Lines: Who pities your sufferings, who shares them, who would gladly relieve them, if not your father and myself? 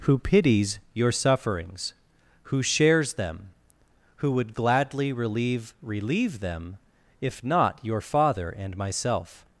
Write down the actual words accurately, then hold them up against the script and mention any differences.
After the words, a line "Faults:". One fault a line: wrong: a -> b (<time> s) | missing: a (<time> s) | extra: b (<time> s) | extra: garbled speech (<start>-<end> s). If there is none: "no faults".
Who pities your sufferings, who shares them, who would gladly relieve relieve them, if not your father and myself?
Faults:
extra: relieve (5.8 s)